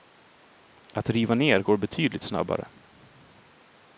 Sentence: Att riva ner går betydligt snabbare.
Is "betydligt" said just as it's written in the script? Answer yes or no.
yes